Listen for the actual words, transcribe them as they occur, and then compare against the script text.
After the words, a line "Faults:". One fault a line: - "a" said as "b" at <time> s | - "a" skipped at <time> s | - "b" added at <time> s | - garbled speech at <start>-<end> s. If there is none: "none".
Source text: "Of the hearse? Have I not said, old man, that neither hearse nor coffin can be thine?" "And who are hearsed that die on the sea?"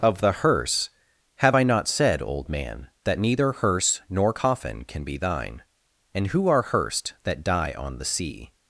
"Of the hearse? Have I not said, old man, that neither hearse nor coffin can be thine?" "And who are hearsed that die on the sea?"
Faults:
none